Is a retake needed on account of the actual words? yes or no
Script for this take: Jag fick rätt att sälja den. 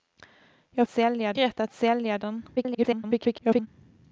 yes